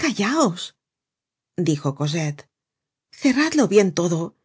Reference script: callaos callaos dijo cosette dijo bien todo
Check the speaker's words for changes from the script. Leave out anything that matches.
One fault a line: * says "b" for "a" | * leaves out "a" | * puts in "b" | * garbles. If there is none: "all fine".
* leaves out "callaos"
* says "cerradlo" for "dijo"